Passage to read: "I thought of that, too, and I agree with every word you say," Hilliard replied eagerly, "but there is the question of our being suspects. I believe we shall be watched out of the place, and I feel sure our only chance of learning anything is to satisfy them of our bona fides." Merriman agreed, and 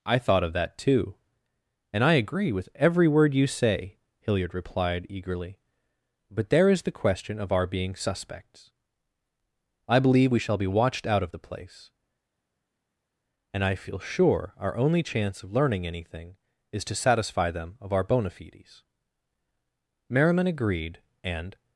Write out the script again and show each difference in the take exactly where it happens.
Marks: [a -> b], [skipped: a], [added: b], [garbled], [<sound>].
"I thought of that, too, and I agree with every word you say," Hilliard replied eagerly, "but there is the question of our being suspects. I believe we shall be watched out of the place, and I feel sure our only chance of learning anything is to satisfy them of our bona fides." Merriman agreed, and